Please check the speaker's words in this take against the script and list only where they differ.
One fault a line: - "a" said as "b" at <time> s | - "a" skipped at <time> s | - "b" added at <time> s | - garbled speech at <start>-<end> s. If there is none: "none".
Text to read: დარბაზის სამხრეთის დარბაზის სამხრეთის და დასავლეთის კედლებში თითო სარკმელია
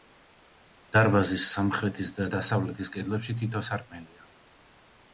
- "დარბაზის სამხრეთის" skipped at 2.1 s